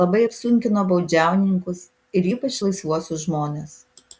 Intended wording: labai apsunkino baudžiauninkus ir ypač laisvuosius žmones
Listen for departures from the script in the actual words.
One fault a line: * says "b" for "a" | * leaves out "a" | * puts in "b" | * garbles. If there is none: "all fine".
all fine